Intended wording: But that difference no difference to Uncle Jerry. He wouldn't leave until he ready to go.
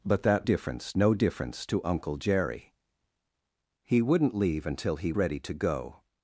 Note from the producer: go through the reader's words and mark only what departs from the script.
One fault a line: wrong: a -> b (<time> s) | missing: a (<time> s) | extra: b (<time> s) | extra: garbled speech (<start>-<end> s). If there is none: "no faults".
no faults